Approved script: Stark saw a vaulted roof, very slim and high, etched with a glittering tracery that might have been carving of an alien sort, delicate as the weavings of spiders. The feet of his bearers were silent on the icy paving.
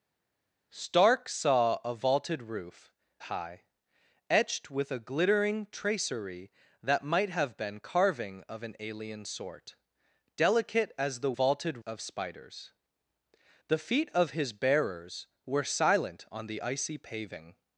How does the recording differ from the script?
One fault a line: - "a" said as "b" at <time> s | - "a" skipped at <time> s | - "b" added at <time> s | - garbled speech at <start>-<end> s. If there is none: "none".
- "very slim and" skipped at 2.9 s
- "weavings" said as "vaulted" at 11.3 s